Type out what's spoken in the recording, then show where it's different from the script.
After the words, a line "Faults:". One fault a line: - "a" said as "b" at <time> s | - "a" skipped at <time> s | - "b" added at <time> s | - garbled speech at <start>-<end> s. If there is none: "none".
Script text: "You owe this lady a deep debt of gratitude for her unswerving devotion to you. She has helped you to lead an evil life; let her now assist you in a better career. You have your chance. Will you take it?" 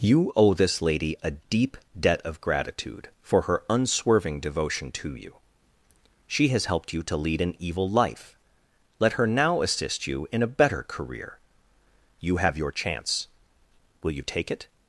"You owe this lady a deep debt of gratitude for her unswerving devotion to you. She has helped you to lead an evil life; let her now assist you in a better career. You have your chance. Will you take it?"
Faults:
none